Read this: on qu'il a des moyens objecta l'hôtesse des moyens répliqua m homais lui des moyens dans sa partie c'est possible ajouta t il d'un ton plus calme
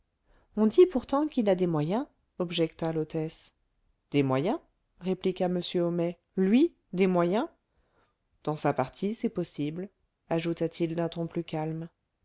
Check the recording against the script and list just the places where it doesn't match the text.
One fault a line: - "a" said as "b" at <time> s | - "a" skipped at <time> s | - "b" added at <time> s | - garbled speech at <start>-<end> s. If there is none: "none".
- "dit pourtant" added at 0.7 s